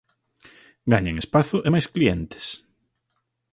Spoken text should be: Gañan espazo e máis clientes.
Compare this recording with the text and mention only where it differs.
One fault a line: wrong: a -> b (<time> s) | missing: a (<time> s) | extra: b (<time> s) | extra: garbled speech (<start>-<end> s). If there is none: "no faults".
no faults